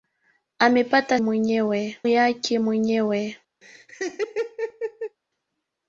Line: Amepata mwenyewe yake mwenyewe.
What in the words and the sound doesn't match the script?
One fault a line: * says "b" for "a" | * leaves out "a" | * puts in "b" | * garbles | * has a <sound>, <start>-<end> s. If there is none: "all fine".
* has a laugh, 3.6-5.2 s